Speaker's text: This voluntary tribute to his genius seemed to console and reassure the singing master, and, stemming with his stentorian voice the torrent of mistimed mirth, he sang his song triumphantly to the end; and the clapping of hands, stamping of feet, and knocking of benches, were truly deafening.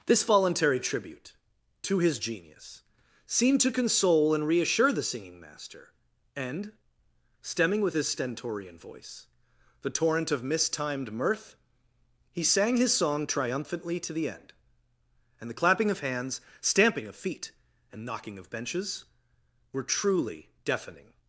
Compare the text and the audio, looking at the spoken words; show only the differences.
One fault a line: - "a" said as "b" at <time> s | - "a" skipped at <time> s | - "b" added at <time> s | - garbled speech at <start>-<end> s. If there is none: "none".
none